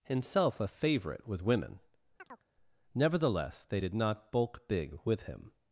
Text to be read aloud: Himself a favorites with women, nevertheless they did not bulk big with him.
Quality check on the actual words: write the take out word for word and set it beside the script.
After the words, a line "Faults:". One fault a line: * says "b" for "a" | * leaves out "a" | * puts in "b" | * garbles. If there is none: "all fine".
Himself a favorite with women, nevertheless they did not bulk big with him.
Faults:
* says "favorite" for "favorites"